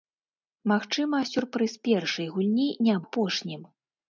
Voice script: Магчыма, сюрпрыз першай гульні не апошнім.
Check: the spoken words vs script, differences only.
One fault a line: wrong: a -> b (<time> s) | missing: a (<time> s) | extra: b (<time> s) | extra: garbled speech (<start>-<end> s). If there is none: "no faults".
no faults